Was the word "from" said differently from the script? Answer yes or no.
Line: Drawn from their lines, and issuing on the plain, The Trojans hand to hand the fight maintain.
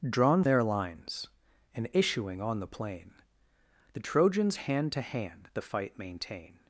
yes